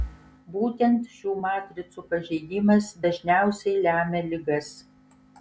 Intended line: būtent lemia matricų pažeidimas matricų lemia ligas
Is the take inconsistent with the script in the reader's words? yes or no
yes